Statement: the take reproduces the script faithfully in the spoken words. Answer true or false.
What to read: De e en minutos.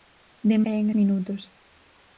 true